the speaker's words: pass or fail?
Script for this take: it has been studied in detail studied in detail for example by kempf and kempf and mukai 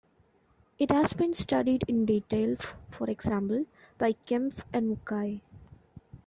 fail